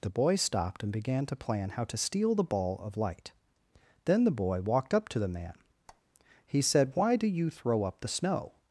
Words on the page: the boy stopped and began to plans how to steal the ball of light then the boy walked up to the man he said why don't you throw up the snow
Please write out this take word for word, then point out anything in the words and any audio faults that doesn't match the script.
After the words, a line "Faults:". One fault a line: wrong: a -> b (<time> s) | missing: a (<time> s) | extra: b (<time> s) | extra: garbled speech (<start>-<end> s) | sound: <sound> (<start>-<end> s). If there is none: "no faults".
the boy stopped and began to plan how to steal the ball of light then the boy walked up to the man he said why do you throw up the snow
Faults:
wrong: plans -> plan (1.4 s)
sound: squeak (5.9-6.0 s)
wrong: don't -> do (7.2 s)